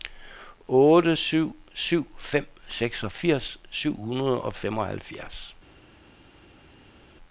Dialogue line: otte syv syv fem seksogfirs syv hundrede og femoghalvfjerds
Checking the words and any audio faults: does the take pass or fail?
pass